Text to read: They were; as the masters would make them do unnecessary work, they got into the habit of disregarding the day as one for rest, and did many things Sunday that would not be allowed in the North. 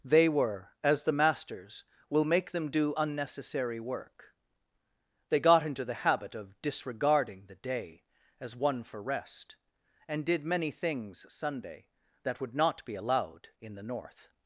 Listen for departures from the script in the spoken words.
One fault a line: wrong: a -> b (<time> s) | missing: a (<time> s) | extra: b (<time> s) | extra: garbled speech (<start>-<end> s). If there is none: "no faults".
wrong: would -> will (2.1 s)